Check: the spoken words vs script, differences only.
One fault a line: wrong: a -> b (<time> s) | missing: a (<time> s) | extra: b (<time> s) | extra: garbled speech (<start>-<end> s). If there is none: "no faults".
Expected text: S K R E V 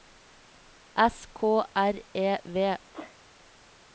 no faults